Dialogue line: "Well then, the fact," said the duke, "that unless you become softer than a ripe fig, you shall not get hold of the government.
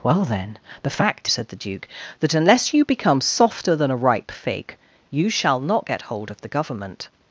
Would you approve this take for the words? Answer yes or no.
yes